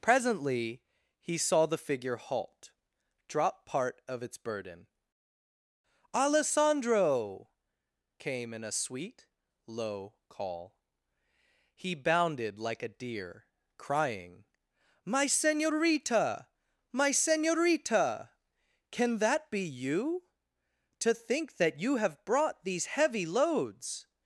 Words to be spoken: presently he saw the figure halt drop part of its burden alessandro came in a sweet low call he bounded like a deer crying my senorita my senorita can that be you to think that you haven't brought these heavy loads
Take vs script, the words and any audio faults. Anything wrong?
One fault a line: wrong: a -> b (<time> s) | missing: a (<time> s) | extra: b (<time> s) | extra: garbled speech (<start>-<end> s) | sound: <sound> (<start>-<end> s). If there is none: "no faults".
wrong: haven't -> have (22.0 s)